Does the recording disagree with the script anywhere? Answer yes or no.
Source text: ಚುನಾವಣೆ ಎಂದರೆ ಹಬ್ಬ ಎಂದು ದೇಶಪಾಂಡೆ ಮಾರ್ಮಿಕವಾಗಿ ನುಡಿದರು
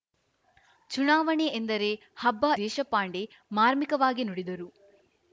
yes